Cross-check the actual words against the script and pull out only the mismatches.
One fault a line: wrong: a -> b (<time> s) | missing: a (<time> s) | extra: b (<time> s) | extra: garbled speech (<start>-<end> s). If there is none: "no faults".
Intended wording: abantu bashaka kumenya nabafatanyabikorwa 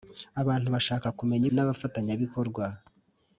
no faults